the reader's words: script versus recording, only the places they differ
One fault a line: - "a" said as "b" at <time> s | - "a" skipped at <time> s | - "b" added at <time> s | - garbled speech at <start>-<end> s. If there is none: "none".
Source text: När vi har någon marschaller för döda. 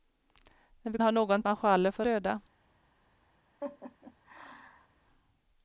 none